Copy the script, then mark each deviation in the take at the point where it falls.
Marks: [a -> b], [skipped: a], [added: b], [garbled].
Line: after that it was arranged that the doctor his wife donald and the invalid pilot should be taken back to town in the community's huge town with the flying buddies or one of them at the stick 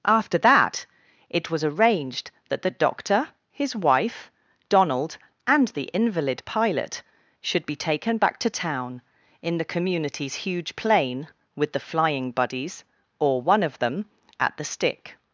after that it was arranged that the doctor his wife donald and the invalid pilot should be taken back to town in the community's huge [town -> plane] with the flying buddies or one of them at the stick